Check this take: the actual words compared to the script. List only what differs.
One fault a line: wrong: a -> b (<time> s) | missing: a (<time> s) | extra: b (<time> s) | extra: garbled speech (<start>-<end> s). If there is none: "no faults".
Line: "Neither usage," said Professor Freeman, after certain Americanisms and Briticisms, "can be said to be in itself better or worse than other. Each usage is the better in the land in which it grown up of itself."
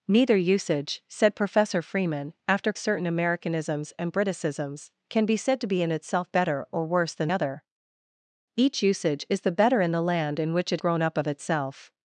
no faults